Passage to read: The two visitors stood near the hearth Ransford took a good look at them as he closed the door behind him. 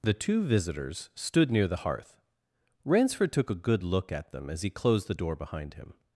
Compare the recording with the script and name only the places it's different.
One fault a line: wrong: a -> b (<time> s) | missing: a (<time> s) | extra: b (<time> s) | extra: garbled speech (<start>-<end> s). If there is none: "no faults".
no faults